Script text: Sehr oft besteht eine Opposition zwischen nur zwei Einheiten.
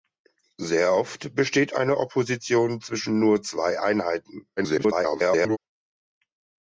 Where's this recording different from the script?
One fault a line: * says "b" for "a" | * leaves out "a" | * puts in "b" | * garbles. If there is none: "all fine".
* garbles